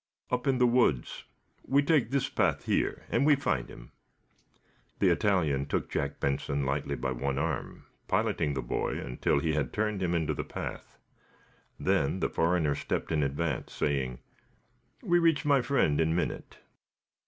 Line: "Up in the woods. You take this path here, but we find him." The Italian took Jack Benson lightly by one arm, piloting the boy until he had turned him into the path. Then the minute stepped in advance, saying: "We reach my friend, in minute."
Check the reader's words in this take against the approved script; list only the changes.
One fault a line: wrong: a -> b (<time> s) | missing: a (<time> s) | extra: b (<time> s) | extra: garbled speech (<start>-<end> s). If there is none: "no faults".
wrong: You -> We (1.6 s)
wrong: but -> and (3.1 s)
wrong: minute -> foreigner (12.3 s)